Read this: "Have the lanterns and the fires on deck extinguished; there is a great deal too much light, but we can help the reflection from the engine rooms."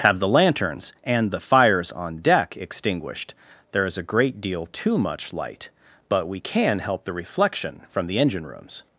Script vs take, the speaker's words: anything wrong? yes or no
no